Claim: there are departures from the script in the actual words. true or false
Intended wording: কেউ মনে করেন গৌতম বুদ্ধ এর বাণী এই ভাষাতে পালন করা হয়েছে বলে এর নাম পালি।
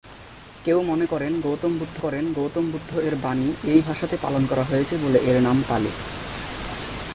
true